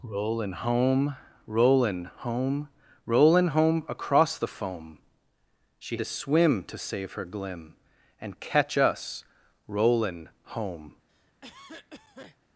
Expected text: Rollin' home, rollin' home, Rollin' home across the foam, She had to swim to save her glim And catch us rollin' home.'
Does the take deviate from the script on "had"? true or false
true